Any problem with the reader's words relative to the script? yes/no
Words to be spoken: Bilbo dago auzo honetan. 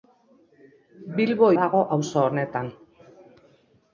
no